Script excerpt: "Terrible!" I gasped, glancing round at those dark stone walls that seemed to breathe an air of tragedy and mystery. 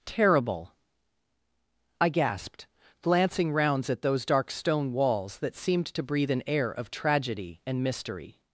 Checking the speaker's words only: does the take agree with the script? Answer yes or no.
no